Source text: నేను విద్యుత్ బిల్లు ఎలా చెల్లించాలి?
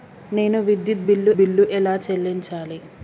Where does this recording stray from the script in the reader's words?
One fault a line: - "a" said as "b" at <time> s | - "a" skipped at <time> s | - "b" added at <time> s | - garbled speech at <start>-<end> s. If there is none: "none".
- "బిల్లు" added at 1.4 s